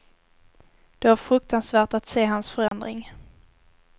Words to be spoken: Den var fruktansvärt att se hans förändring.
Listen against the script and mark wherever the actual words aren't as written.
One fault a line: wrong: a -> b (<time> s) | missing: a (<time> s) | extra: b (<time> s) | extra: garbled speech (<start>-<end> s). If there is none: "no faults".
wrong: Den -> Det (1.0 s)